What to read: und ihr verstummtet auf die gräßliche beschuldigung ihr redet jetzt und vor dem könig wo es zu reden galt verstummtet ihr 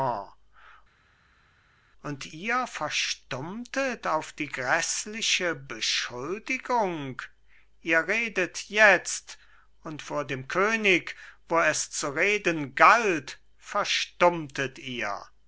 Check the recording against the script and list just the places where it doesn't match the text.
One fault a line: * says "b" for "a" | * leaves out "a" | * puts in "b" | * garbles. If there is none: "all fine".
all fine